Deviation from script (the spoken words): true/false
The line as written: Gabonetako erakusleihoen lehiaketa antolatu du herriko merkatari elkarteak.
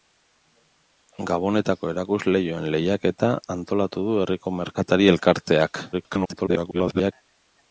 true